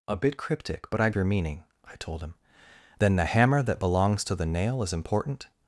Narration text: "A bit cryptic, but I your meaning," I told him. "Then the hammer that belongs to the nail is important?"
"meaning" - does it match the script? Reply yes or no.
yes